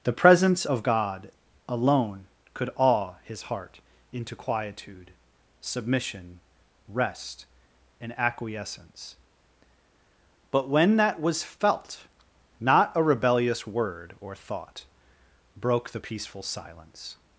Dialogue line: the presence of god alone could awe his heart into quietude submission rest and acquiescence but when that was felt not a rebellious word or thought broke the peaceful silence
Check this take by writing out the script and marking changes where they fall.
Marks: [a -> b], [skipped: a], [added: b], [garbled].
the presence of god alone could awe his heart into quietude submission rest and acquiescence but when that was felt not a rebellious word or thought broke the peaceful silence